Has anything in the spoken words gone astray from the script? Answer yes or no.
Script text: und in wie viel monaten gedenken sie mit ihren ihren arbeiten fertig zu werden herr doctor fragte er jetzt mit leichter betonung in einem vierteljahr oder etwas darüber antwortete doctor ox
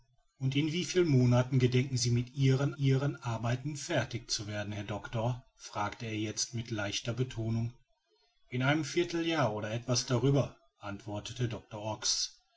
no